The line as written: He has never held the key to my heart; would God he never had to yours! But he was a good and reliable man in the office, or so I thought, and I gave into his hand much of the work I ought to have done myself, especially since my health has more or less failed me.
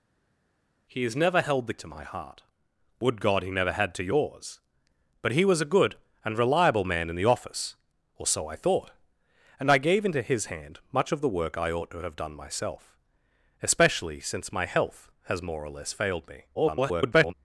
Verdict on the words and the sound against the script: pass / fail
fail